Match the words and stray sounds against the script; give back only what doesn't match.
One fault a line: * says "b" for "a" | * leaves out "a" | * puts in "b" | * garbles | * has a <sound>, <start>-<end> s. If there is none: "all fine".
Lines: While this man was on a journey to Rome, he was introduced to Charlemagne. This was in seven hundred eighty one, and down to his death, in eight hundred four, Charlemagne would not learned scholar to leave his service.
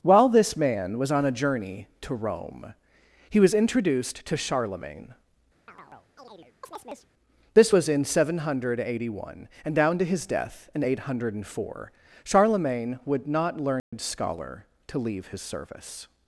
* has a chirp, 5.7-7.1 s
* has a dropout, 13.8-13.9 s